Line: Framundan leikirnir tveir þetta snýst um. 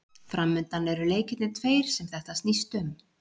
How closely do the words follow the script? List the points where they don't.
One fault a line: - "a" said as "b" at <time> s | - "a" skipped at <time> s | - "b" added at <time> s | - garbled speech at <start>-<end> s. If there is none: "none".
- "eru" added at 0.9 s
- "sem" added at 2.0 s